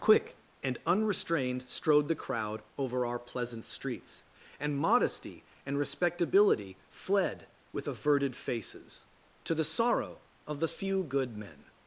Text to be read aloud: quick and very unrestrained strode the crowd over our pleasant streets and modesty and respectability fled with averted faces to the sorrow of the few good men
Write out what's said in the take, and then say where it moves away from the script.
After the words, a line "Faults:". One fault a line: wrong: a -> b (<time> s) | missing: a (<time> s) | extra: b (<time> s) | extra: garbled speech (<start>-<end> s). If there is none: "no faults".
quick and unrestrained strode the crowd over our pleasant streets and modesty and respectability fled with averted faces to the sorrow of the few good men
Faults:
missing: very (0.8 s)